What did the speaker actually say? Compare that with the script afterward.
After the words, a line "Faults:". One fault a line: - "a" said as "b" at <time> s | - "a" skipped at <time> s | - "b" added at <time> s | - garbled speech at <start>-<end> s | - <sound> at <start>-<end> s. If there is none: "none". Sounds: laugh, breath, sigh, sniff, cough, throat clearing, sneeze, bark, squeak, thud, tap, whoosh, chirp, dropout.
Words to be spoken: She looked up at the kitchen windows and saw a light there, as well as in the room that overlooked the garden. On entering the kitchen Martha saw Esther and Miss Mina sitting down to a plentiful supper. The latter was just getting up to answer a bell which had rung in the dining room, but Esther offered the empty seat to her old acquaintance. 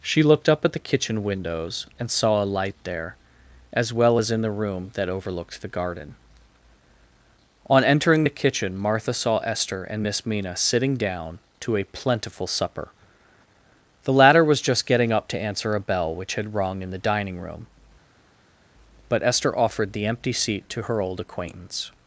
She looked up at the kitchen windows and saw a light there, as well as in the room that overlooked the garden. On entering the kitchen Martha saw Esther and Miss Mina sitting down to a plentiful supper. The latter was just getting up to answer a bell which had rung in the dining room, but Esther offered the empty seat to her old acquaintance.
Faults:
none